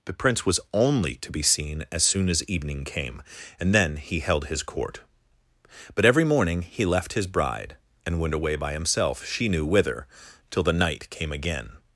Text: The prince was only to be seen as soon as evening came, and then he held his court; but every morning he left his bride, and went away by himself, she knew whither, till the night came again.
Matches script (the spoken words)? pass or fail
pass